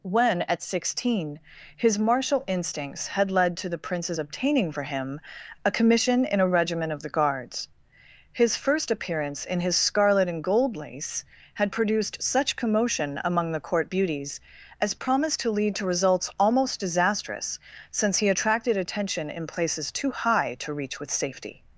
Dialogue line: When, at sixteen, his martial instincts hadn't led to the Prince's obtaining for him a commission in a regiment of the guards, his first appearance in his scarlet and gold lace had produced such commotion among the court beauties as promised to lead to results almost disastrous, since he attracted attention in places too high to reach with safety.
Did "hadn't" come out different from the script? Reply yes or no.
yes